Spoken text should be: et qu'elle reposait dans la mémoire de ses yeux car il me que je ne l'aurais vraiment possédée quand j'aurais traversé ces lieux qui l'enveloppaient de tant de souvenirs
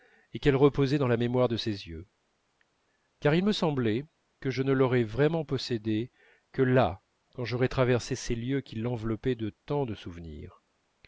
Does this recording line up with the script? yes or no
no